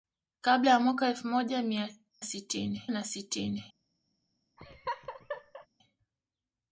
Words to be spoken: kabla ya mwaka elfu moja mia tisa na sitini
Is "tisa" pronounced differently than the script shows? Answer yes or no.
yes